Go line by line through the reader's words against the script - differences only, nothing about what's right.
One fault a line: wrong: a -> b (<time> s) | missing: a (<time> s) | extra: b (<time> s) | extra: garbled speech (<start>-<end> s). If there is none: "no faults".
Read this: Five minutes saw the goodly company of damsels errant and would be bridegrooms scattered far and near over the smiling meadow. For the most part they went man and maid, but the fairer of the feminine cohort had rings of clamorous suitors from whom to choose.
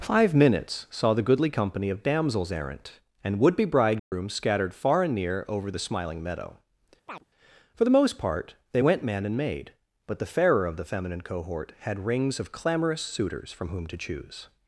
no faults